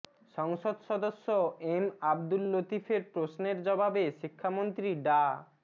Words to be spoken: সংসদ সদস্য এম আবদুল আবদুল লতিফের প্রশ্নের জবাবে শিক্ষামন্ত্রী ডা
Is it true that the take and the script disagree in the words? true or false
true